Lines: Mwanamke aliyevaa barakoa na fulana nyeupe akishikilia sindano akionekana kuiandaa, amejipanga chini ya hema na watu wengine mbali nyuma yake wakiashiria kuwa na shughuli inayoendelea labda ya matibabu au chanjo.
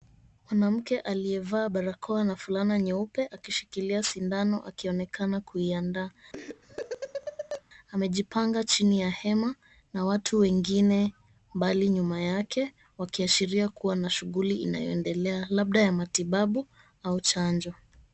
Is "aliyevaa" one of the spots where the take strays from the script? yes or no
no